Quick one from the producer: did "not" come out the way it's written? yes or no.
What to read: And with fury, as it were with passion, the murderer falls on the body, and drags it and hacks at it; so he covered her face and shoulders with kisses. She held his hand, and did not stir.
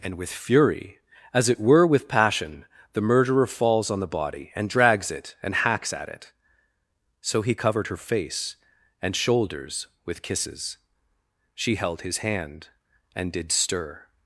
no